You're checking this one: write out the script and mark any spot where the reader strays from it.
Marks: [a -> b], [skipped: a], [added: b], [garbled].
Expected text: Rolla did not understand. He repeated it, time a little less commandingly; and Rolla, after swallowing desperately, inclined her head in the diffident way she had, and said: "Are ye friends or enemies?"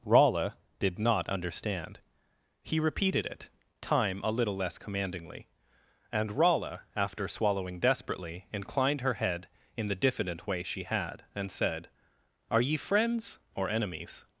Rolla did not understand. He repeated it, time a little less commandingly; and Rolla, after swallowing desperately, inclined her head in the diffident way she had, and said: "Are ye friends or enemies?"